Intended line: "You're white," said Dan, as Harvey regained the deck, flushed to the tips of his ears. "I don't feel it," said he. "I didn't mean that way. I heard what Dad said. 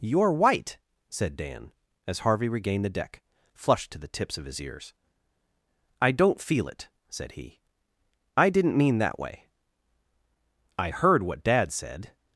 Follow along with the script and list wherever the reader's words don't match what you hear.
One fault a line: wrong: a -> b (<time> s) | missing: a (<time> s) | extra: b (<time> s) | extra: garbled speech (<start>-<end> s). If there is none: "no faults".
no faults